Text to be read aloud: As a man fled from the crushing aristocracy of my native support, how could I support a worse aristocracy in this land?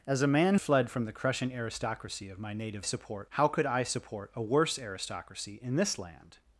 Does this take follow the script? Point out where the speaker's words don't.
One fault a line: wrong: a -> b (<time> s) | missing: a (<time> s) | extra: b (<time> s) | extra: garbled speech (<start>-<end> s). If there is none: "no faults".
no faults